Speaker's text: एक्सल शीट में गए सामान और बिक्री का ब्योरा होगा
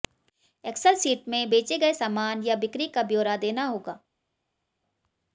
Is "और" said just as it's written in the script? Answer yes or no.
no